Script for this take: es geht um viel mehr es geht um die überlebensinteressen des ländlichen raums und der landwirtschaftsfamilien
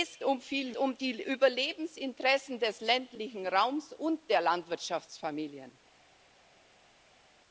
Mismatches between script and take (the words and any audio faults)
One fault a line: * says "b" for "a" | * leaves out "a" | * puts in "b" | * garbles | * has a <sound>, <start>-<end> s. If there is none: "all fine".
* leaves out "geht"
* leaves out "mehr es geht"